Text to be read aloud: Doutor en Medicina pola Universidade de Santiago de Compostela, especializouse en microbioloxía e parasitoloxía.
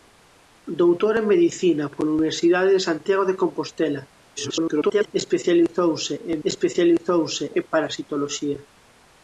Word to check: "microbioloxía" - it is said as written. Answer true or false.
false